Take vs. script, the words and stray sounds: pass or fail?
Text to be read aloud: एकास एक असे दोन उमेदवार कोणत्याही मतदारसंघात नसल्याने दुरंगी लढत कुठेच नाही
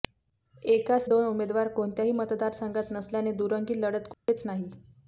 fail